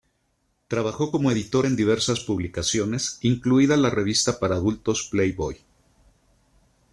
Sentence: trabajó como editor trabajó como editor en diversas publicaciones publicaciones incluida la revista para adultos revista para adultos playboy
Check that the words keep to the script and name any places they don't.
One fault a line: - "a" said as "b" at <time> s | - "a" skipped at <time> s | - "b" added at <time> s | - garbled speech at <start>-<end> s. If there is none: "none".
- "trabajó como editor" skipped at 1.7 s
- "publicaciones" skipped at 3.2 s
- "revista para adultos" skipped at 5.1 s